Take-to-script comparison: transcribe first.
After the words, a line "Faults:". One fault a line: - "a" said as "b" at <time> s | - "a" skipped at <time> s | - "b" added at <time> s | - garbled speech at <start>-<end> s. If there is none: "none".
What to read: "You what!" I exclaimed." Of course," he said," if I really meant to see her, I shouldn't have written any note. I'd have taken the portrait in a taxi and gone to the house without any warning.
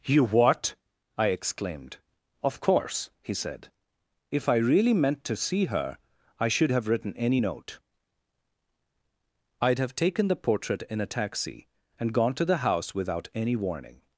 "You what!" I exclaimed." Of course," he said," if I really meant to see her, I should have written any note. I'd have taken the portrait in a taxi and gone to the house without any warning.
Faults:
- "shouldn't" said as "should" at 6.5 s